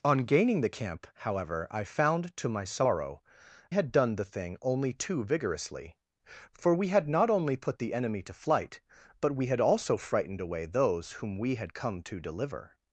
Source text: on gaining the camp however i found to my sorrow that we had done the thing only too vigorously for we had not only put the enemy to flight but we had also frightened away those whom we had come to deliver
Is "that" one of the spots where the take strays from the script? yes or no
yes